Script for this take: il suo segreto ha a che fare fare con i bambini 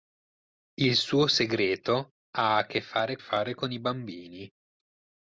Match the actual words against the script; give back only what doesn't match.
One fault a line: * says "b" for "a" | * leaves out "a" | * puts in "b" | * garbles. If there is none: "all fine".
all fine